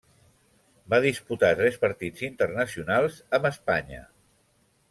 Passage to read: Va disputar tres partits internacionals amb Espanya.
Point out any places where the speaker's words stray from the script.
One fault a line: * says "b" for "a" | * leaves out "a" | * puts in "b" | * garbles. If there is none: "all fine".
all fine